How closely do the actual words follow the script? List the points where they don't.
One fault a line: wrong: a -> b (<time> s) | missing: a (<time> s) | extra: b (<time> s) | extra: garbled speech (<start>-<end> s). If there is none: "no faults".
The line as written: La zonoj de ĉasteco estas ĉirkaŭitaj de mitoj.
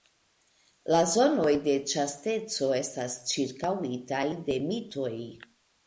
no faults